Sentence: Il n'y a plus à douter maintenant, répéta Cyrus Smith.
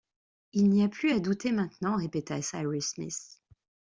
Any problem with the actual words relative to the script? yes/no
no